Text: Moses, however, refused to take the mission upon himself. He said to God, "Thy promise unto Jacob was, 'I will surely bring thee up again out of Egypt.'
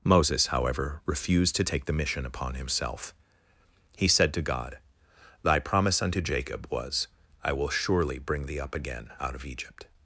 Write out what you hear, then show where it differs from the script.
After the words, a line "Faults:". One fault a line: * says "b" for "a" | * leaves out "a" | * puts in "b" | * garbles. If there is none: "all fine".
Moses, however, refused to take the mission upon himself. He said to God, "Thy promise unto Jacob was, 'I will surely bring thee up again out of Egypt.'
Faults:
all fine